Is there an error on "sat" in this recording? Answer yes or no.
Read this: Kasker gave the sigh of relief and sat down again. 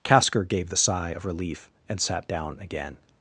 no